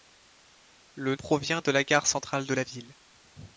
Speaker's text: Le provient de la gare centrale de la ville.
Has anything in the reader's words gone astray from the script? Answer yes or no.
no